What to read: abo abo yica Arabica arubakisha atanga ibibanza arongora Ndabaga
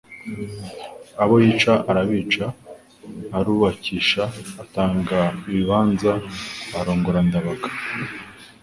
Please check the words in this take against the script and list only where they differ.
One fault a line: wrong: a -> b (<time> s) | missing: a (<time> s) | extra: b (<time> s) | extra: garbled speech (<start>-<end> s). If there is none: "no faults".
missing: abo (1.4 s)